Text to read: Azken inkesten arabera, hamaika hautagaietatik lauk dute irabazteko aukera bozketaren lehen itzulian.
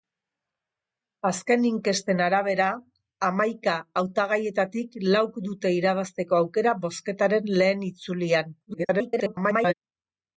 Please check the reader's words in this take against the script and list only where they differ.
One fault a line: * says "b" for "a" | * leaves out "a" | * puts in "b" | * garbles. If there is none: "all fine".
* garbles